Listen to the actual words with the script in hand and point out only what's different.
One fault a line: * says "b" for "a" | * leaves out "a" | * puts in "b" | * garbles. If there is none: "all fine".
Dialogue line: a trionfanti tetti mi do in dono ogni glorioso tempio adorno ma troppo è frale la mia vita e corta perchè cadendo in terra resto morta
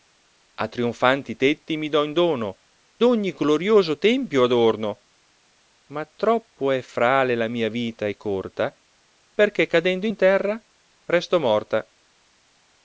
all fine